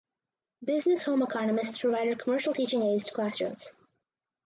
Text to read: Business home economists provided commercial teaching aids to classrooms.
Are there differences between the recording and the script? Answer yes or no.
no